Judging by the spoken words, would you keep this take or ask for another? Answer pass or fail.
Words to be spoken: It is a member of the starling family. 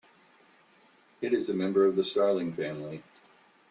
pass